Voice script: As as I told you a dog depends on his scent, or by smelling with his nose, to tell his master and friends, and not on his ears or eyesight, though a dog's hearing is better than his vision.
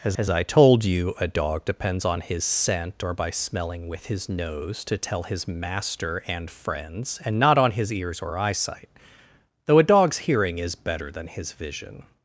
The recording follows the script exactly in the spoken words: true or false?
true